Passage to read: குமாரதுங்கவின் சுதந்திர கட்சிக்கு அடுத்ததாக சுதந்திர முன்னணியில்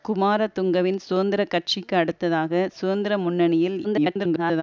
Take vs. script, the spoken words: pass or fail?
fail